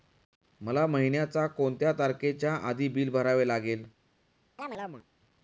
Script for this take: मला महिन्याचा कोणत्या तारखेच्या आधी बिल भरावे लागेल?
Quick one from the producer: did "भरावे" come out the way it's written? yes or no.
yes